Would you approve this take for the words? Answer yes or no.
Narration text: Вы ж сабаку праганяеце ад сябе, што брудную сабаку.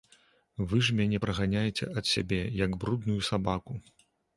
no